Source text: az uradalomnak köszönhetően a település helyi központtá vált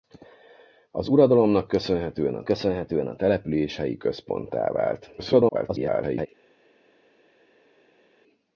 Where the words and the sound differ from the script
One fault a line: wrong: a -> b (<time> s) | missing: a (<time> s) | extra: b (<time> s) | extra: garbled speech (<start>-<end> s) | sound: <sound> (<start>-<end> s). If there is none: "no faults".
extra: köszönhetően a (2.4 s)
extra: garbled speech (5.2-6.3 s)